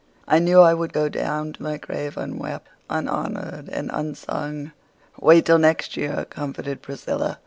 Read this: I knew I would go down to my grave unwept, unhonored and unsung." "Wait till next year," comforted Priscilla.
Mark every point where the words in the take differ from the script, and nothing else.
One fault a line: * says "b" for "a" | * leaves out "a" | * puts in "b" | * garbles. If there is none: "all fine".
all fine